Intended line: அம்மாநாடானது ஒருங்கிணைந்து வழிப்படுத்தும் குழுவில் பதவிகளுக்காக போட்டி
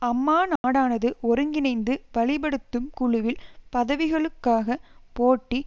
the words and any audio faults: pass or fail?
fail